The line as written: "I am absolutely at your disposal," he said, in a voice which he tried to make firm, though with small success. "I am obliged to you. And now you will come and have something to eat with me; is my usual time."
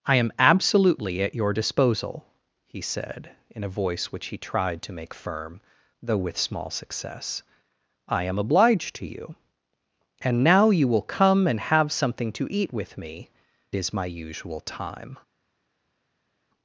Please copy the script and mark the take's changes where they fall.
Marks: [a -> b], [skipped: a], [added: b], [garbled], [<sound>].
"I am absolutely at your disposal," he said, in a voice which he tried to make firm, though with small success. "I am obliged to you. And now you will come and have something to eat with me; is my usual time."